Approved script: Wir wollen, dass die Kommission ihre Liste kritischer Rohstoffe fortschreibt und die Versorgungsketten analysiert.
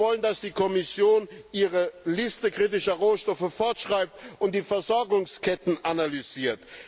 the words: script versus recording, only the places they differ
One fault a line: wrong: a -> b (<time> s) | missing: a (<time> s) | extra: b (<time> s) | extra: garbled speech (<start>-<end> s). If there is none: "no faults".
no faults